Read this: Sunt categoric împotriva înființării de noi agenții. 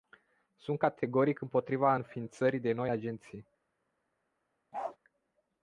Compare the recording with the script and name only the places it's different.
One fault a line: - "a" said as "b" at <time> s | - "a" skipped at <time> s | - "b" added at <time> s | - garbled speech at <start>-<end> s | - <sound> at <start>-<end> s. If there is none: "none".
- bark at 4.7-5.0 s